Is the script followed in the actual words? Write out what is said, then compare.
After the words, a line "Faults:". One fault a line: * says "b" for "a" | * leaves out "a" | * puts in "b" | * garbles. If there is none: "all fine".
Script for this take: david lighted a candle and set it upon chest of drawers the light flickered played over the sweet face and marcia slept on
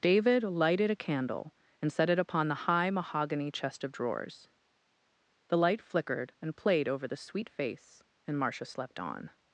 david lighted a candle and set it upon the high mahogany chest of drawers the light flickered and played over the sweet face and marcia slept on
Faults:
* puts in "the high mahogany"
* puts in "and"